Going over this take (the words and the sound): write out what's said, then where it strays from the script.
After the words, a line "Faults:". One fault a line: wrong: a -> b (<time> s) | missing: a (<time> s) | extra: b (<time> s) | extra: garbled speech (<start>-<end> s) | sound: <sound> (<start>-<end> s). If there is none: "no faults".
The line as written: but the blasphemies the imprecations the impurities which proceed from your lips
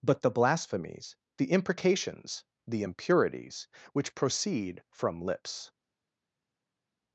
but the blasphemies the imprecations the impurities which proceed from lips
Faults:
missing: your (5.2 s)